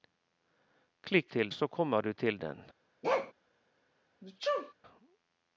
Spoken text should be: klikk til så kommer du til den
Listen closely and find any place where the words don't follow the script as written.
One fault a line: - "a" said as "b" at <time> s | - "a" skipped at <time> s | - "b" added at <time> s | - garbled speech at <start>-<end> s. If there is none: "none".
none